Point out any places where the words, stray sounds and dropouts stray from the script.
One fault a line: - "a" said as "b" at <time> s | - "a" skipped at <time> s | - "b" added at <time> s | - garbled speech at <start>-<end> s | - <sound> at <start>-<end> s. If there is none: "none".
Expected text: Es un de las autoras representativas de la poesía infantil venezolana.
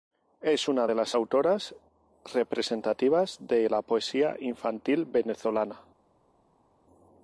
- "un" said as "una" at 0.7 s